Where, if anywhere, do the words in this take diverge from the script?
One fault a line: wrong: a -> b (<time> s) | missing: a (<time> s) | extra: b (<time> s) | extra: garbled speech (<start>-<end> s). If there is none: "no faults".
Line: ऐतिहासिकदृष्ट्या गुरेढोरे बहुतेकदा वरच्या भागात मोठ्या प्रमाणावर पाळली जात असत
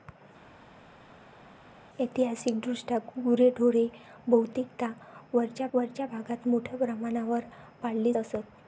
extra: वरच्या (5.7 s)
missing: जात (8.1 s)